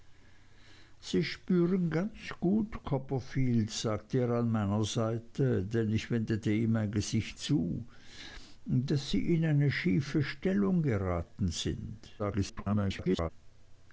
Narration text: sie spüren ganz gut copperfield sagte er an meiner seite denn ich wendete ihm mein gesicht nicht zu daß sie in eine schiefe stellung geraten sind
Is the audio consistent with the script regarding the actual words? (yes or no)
no